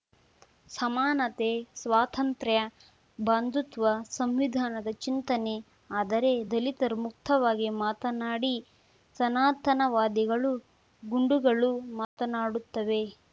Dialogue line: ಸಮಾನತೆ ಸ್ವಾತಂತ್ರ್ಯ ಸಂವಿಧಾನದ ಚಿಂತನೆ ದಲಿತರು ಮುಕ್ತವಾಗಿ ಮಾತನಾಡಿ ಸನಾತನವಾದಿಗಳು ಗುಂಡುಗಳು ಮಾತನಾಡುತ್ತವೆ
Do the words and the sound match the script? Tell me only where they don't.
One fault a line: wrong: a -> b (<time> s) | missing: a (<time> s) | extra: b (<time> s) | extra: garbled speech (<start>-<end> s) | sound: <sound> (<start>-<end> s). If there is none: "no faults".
extra: ಬಂಧುತ್ವ (3.2 s)
extra: ಆದರೆ (5.9 s)
sound: dropout (12.0-12.2 s)